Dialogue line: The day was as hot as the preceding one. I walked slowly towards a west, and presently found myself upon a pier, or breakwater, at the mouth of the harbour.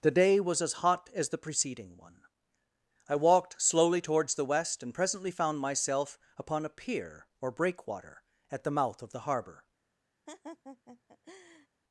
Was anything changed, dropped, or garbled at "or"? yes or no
no